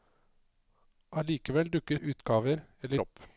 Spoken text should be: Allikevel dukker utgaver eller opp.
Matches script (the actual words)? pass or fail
pass